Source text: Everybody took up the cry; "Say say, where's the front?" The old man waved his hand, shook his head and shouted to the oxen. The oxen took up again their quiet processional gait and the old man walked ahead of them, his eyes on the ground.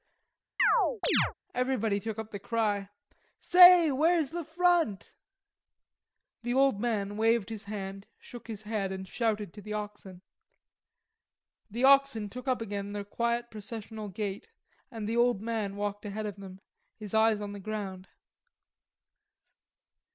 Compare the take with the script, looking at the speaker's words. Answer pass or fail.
fail